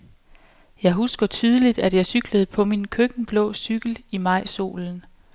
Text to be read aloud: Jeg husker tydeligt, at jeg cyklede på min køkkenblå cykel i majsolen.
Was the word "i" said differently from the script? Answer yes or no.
no